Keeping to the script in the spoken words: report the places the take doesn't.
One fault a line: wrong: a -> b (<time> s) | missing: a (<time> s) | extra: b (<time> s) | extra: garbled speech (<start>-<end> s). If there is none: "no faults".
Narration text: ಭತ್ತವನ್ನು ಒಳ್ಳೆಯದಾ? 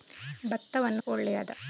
no faults